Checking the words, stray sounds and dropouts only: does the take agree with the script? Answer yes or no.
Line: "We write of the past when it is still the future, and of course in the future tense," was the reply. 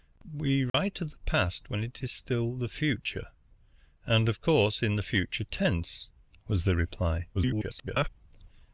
no